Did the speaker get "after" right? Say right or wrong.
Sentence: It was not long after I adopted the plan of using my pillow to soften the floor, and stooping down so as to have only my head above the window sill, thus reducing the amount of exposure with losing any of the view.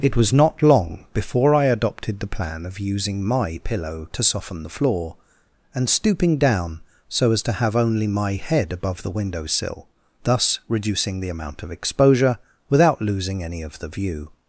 wrong